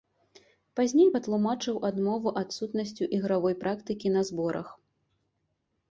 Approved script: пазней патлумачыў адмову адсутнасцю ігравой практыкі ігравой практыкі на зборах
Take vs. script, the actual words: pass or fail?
fail